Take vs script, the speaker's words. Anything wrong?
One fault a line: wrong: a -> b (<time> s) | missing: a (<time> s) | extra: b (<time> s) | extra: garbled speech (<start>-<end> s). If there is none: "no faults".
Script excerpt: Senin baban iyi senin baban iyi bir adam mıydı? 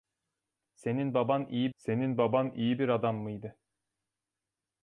no faults